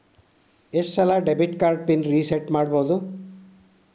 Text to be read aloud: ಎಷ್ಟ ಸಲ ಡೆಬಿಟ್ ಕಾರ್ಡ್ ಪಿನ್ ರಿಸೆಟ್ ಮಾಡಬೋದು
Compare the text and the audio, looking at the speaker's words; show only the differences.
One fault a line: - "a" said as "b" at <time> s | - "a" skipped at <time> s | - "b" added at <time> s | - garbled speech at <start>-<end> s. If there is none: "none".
none